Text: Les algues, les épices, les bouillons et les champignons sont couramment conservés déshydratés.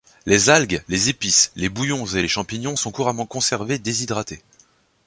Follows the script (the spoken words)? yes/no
yes